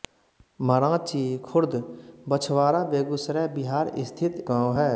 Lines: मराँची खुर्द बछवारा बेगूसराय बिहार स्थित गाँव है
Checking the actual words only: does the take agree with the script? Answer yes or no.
yes